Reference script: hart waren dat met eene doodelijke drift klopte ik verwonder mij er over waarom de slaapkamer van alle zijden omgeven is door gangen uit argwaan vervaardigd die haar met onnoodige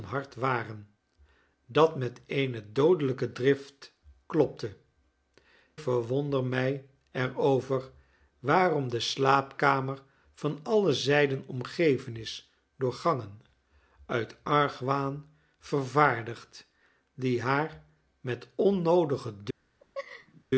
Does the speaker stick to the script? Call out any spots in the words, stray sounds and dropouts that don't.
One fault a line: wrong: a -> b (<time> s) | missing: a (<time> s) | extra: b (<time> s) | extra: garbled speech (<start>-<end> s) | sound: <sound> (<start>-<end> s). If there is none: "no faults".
missing: ik (4.8 s)
sound: laugh (19.8-20.4 s)